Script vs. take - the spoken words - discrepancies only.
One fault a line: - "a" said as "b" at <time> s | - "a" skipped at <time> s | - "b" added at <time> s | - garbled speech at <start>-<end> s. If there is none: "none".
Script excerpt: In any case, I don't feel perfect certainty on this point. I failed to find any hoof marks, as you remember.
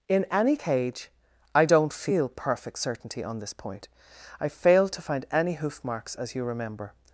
- "case" said as "cage" at 0.5 s